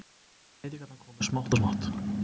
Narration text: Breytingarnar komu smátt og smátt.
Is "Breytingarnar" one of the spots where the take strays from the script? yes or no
no